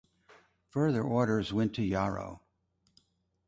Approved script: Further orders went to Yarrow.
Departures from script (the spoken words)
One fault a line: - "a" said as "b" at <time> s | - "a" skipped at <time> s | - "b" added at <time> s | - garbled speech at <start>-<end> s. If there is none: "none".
none